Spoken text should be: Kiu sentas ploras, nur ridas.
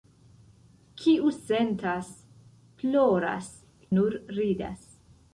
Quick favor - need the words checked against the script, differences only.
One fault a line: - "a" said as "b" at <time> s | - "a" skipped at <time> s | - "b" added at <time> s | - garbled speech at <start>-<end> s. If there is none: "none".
none